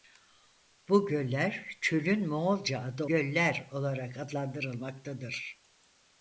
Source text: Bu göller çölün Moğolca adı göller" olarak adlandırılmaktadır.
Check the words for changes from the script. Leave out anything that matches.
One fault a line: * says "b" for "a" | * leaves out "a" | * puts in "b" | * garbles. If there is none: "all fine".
all fine